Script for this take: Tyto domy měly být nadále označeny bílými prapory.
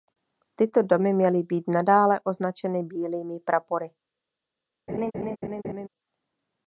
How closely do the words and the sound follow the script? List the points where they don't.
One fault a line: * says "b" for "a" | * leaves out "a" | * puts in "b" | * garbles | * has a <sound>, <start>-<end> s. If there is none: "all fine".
* has a laugh, 4.9-5.9 s